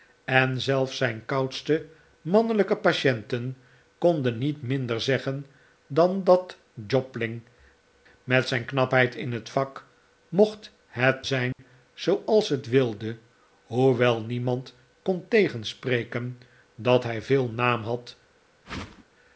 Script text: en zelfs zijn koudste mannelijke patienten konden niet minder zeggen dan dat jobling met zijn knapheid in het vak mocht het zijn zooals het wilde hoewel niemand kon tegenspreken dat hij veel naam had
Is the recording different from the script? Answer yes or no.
no